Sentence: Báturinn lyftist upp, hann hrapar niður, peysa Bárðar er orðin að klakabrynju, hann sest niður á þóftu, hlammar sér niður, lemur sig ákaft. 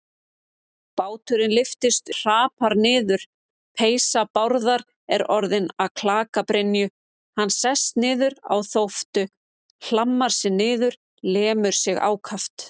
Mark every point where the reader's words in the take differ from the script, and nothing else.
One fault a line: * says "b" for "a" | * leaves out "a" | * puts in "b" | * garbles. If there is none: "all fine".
* leaves out "upp hann"